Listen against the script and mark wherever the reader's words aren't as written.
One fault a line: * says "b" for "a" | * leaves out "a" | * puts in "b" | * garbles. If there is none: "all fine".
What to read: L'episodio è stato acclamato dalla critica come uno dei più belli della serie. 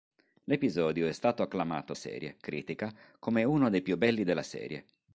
* says "serie" for "dalla"